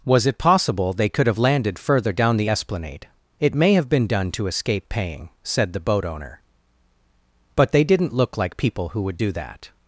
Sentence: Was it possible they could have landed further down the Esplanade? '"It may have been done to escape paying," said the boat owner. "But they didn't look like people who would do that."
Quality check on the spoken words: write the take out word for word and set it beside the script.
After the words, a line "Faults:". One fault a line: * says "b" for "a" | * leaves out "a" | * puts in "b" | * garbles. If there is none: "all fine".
Was it possible they could have landed further down the Esplanade? '"It may have been done to escape paying," said the boat owner. "But they didn't look like people who would do that."
Faults:
all fine